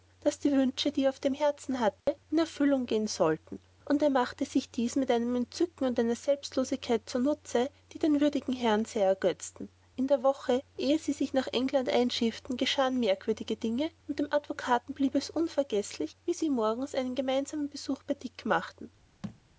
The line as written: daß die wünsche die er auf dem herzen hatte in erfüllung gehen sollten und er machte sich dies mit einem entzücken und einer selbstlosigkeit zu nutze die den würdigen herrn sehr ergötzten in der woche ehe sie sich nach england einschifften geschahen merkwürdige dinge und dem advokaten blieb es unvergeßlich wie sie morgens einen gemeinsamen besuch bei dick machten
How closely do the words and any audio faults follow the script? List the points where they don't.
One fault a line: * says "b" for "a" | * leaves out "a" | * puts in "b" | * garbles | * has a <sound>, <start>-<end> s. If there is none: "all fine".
* has a dropout, 2.0-2.1 s
* has a thud, 19.2-19.4 s